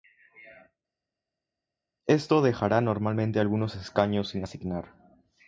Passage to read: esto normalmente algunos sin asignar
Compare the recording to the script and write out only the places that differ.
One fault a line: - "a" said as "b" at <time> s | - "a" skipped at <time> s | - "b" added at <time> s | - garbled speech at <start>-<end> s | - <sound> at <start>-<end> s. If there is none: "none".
- "dejará" added at 2.4 s
- "escaños" added at 3.8 s